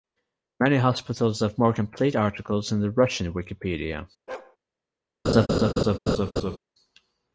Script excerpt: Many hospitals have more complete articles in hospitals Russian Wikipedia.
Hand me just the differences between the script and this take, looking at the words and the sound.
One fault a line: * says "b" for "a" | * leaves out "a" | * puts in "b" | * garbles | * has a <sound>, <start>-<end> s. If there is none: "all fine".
* says "the" for "hospitals"
* has a bark, 4.3-4.6 s
* has a laugh, 5.2-6.6 s